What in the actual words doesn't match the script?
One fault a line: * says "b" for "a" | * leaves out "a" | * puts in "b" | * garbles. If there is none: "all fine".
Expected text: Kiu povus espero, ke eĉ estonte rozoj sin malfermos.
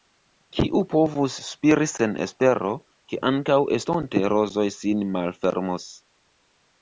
* puts in "spiri sen"
* says "ankaŭ" for "eĉ"